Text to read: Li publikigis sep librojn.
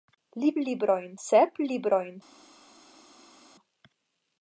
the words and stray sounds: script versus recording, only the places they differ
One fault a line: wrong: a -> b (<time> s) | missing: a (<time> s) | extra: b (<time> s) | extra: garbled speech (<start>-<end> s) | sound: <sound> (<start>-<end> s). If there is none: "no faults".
wrong: publikigis -> librojn (0.6 s)